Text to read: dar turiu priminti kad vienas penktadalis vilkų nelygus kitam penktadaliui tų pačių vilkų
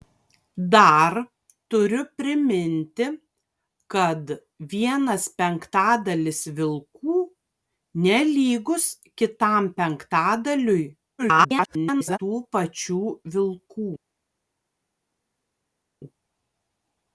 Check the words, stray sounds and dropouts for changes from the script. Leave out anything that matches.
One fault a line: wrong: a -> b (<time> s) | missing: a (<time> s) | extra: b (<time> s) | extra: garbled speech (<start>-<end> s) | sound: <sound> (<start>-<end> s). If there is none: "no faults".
extra: garbled speech (11.2-12.2 s)